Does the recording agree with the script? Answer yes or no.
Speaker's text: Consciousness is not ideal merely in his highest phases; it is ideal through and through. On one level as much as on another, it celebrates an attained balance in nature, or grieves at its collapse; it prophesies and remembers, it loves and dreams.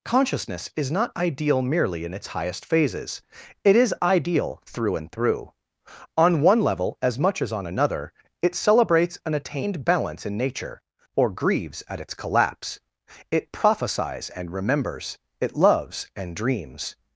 no